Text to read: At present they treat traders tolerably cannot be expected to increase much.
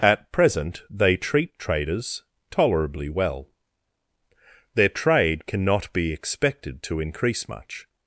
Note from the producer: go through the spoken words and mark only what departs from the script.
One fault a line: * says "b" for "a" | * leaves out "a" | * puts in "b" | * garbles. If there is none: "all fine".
* puts in "well Their trade"